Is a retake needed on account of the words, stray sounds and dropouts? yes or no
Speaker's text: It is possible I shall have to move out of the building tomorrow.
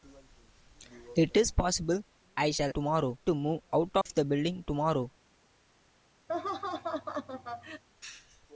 yes